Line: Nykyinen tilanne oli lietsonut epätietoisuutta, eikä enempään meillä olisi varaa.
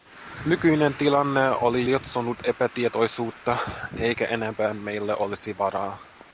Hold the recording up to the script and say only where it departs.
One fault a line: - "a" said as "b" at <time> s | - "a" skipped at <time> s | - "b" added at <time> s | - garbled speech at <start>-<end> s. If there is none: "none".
none